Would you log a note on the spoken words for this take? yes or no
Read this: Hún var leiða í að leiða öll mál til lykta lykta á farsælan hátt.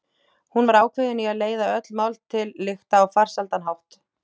yes